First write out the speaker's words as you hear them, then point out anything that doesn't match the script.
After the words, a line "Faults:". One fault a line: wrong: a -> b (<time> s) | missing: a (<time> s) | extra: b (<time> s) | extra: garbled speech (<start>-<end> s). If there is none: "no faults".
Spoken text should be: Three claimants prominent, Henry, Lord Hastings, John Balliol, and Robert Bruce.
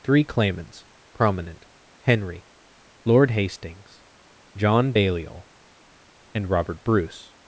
Three claimants prominent, Henry, Lord Hastings, John Balliol, and Robert Bruce.
Faults:
no faults